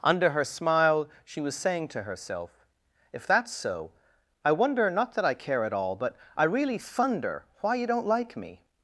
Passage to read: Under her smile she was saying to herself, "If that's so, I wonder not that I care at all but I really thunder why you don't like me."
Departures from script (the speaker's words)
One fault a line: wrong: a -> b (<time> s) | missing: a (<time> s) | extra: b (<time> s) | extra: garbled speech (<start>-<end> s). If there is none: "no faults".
no faults